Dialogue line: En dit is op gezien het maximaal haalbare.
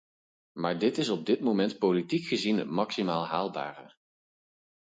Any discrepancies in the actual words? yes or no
yes